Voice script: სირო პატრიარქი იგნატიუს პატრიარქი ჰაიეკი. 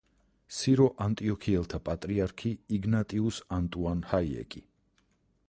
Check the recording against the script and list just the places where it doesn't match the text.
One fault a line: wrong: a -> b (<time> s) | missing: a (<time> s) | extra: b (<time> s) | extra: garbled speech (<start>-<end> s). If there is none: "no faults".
extra: ანტიოქიელთა (1.1 s)
wrong: პატრიარქი -> ანტუან (3.6 s)